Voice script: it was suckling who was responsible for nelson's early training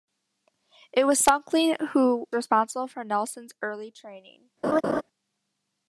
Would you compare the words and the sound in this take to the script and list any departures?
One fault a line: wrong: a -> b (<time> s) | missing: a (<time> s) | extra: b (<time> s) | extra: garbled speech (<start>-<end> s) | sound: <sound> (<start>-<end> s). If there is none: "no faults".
missing: was (2.3 s)
sound: laugh (4.6-5.0 s)